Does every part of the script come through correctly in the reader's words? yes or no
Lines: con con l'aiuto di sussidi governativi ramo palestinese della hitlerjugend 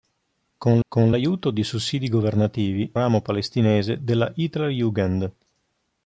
yes